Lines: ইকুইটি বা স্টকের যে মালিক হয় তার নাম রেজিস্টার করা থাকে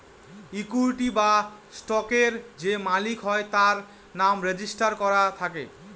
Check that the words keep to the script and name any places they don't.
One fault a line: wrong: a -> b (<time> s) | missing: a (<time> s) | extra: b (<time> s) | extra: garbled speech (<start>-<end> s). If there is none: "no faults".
no faults